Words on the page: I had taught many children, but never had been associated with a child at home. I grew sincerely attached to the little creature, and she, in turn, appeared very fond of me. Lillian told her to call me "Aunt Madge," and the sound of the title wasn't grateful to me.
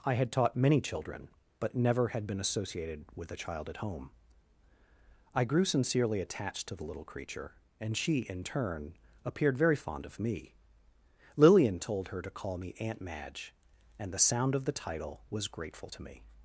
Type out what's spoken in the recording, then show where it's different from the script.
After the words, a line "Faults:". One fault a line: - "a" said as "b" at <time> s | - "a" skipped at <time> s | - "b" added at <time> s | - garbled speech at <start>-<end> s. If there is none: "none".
I had taught many children, but never had been associated with a child at home. I grew sincerely attached to the little creature, and she, in turn, appeared very fond of me. Lillian told her to call me "Aunt Madge," and the sound of the title was grateful to me.
Faults:
- "wasn't" said as "was" at 15.3 s